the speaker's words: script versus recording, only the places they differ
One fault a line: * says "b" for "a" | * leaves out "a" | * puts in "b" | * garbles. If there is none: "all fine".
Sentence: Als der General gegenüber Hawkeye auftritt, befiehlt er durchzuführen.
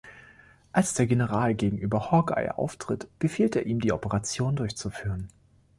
* puts in "ihm die Operation"